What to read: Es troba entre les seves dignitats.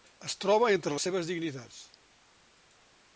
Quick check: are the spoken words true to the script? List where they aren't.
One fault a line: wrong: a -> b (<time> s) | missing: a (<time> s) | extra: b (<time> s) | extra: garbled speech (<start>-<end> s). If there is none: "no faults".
no faults